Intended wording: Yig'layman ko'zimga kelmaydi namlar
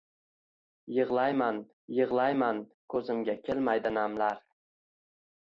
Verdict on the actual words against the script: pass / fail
fail